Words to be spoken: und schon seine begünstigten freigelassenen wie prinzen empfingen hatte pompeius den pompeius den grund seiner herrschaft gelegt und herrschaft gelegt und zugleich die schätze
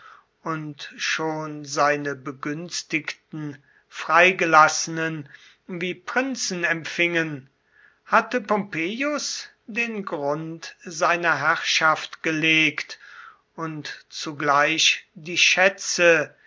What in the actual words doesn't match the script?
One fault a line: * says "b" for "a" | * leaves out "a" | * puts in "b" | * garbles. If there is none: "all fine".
* leaves out "pompeius den"
* leaves out "herrschaft gelegt und"